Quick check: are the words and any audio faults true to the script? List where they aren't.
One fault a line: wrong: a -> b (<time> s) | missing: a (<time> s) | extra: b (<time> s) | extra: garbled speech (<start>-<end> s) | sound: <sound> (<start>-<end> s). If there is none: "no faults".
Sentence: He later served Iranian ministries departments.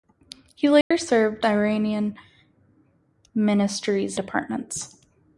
sound: dropout (0.8-0.9 s)